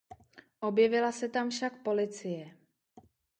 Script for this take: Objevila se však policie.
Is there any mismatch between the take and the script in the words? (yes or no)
yes